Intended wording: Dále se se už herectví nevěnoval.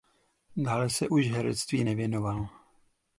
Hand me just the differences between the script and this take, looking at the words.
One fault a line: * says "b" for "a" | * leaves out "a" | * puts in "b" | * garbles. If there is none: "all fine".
* leaves out "se"